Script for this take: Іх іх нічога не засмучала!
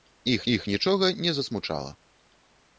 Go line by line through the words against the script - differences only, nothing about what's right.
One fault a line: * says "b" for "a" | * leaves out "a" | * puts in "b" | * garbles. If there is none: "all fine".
all fine